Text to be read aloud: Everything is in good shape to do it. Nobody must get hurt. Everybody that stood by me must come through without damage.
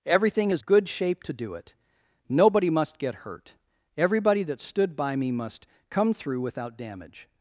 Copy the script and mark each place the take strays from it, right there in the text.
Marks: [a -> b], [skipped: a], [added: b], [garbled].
Everything is [skipped: in] good shape to do it. Nobody must get hurt. Everybody that stood by me must come through without damage.